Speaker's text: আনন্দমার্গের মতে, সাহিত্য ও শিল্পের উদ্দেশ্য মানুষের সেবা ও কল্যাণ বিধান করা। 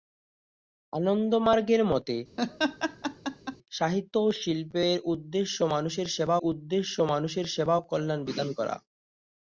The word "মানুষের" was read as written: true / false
true